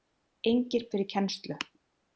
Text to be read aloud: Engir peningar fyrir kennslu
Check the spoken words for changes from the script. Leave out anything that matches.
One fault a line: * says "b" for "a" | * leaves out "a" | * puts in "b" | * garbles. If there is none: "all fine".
* leaves out "peningar"